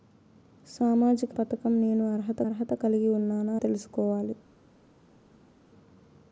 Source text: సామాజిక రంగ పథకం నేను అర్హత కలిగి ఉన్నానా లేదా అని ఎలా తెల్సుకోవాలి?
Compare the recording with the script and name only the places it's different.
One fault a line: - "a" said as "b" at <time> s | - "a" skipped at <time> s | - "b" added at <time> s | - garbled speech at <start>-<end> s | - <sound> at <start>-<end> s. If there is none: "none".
- "రంగ" skipped at 1.4 s
- "అర్హత" added at 2.4 s
- "లేదా అని ఎలా" skipped at 3.6 s